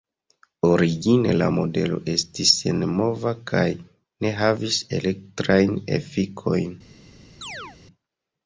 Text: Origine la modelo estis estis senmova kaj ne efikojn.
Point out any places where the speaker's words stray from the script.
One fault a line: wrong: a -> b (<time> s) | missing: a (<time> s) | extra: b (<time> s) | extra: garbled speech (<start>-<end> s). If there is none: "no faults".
missing: estis (2.5 s)
extra: havis elektrajn (4.4 s)